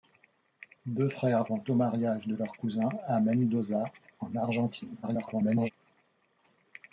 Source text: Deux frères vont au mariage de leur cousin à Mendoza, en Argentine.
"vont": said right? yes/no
yes